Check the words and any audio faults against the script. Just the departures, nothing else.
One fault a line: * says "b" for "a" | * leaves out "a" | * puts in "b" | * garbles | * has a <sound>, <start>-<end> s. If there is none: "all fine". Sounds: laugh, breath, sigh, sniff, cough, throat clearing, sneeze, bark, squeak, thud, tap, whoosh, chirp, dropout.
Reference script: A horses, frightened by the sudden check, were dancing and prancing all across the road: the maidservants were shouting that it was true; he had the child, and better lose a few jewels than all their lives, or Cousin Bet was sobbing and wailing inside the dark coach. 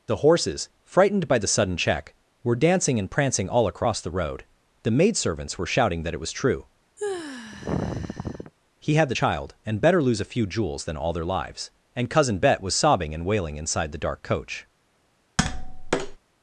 * says "The" for "A"
* has a sigh, 7.0-8.5 s
* says "and" for "or"
* has a tap, 15.4-16.2 s